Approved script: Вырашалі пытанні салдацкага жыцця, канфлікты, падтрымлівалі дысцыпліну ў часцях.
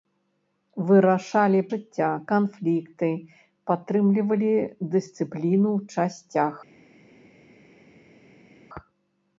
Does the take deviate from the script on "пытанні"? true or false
true